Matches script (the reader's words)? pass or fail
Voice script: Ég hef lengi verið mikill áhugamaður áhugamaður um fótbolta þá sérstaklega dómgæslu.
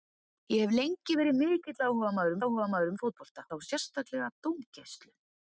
pass